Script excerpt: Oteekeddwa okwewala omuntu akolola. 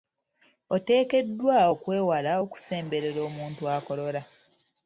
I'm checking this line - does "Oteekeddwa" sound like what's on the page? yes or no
yes